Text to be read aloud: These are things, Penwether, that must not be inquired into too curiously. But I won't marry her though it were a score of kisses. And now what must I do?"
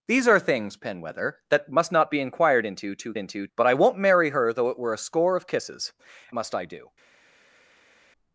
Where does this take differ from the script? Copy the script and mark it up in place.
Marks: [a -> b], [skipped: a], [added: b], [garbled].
These are things, Penwether, that must not be inquired into too [curiously. -> into] But I won't marry her though it were a score of kisses. [skipped: And now what] must I do?"